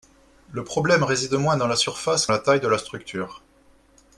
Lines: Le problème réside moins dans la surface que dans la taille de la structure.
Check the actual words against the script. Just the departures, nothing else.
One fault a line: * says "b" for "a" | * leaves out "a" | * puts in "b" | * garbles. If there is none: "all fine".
* leaves out "dans"